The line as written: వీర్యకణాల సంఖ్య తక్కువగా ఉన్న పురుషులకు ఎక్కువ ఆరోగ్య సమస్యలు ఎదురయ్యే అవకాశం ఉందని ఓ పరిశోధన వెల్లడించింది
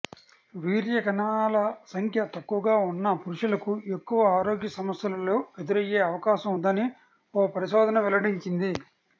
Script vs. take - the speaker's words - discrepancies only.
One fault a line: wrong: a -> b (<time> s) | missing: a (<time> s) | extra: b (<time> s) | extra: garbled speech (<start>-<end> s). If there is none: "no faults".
no faults